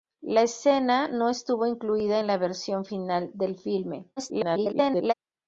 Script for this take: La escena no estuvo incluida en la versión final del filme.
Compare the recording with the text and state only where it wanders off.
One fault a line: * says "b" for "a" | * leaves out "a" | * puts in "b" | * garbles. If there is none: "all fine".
* garbles